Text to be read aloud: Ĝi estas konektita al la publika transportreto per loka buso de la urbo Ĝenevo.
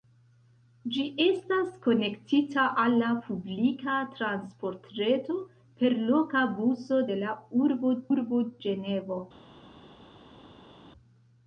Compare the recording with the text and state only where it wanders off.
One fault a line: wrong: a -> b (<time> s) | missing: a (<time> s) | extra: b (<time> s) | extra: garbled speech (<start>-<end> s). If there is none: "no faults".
extra: urbo (8.1 s)